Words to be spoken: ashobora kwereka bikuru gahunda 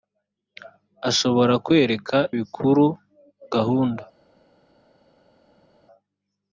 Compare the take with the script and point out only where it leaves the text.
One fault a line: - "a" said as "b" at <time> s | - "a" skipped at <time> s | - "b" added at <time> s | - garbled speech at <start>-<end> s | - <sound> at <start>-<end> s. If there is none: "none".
none